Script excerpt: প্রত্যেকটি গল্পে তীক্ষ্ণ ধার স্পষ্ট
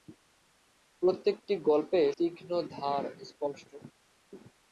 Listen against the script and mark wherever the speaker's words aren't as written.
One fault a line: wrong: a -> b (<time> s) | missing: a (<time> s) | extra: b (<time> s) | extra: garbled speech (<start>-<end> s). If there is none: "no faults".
no faults